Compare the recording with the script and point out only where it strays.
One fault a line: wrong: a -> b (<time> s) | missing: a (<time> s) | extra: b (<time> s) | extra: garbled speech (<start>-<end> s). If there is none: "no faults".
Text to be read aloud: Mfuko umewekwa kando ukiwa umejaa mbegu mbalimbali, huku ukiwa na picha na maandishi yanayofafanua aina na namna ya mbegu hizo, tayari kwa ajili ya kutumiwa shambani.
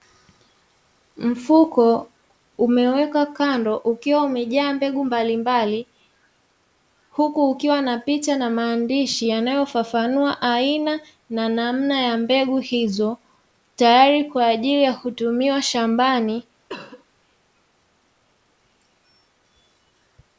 no faults